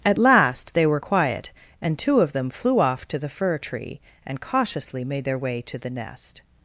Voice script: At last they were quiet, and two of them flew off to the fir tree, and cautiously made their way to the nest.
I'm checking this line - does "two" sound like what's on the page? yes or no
yes